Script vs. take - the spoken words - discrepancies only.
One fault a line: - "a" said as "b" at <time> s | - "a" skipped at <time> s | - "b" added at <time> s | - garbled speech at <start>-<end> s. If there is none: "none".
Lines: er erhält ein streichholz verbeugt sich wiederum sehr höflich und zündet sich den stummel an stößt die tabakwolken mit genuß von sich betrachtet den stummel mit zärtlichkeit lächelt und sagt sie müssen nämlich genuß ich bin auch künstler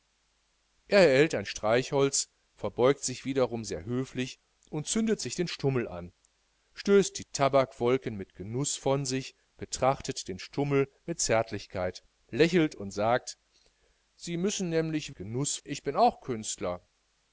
none